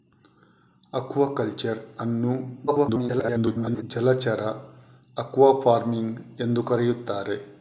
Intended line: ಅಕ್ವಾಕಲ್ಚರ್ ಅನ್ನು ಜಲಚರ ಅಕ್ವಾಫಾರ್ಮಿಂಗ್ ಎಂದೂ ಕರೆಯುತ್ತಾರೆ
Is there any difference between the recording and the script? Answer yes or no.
yes